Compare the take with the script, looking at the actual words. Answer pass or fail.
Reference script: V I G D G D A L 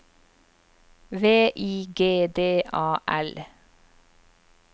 fail